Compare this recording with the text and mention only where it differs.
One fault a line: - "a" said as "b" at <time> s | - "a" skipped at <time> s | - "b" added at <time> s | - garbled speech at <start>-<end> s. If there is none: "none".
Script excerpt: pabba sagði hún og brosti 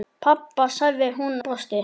- "og" skipped at 1.4 s